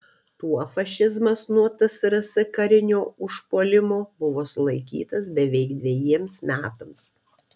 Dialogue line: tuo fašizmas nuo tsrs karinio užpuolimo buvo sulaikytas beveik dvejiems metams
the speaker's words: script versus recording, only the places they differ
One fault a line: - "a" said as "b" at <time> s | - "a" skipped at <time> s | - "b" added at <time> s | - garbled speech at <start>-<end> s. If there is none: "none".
none